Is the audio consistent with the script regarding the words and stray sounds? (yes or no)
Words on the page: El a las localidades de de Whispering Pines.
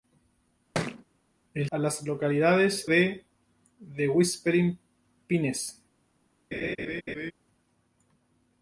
no